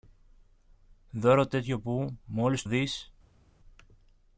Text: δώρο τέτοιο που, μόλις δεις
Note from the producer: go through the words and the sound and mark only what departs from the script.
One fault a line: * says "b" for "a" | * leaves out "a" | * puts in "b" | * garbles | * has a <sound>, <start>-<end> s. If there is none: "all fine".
all fine